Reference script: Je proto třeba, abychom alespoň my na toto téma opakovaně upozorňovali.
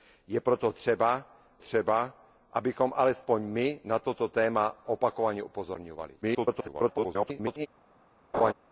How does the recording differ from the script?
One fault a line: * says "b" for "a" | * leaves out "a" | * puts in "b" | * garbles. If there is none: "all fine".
* puts in "třeba"
* garbles